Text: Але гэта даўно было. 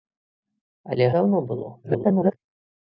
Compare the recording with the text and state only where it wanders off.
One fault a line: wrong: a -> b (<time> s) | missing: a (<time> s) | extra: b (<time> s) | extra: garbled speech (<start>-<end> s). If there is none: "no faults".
missing: гэта (1.1 s)
extra: garbled speech (1.8-2.4 s)